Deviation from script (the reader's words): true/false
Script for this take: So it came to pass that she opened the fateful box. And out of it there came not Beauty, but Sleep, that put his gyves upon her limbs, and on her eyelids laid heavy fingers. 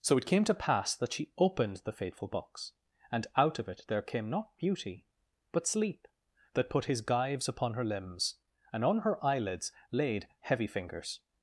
false